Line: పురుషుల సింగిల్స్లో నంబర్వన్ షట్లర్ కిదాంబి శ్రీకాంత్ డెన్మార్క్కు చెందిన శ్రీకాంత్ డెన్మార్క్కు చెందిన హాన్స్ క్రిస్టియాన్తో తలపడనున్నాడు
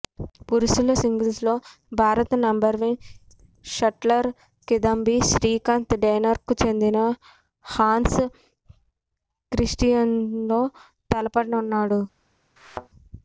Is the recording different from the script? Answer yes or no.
yes